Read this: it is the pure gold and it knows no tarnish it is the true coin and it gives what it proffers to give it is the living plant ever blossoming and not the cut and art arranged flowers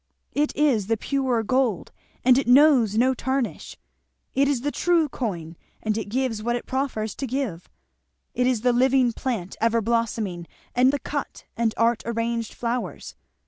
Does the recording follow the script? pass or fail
fail